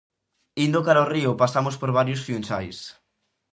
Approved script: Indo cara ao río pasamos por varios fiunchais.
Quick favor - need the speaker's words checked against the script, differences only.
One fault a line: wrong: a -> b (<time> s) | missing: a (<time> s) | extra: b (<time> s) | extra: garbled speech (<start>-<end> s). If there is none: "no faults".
no faults